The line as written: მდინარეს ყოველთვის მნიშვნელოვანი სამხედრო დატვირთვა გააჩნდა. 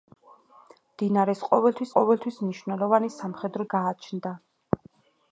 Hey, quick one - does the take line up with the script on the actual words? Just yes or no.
no